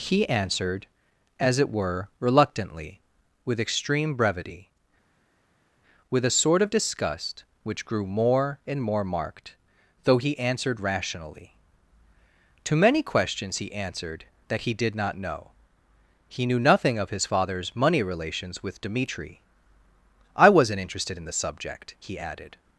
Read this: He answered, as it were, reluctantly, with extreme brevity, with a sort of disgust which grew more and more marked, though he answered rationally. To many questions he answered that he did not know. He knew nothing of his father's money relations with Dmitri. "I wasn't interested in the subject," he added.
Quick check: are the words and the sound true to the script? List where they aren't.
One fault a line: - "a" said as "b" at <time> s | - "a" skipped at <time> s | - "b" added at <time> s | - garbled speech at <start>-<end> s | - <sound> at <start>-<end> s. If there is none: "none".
none